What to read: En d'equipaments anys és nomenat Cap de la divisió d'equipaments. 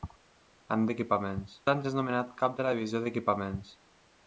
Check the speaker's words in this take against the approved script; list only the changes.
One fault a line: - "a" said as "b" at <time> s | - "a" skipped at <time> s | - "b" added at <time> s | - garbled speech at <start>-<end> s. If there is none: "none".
none